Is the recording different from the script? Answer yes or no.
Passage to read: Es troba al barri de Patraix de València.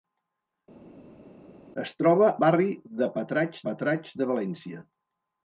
yes